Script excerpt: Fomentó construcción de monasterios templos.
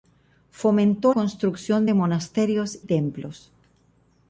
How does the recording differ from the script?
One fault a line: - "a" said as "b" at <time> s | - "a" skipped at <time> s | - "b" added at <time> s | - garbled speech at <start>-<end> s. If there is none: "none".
none